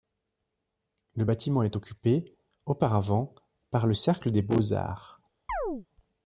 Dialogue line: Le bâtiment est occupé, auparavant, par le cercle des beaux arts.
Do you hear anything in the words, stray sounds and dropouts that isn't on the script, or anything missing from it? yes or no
yes